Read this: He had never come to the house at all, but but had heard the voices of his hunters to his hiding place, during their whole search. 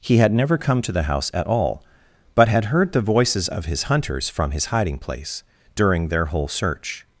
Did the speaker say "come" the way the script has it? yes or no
yes